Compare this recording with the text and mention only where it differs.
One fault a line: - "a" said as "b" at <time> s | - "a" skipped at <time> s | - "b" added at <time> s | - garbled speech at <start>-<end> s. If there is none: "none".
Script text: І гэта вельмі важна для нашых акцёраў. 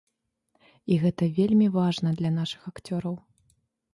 none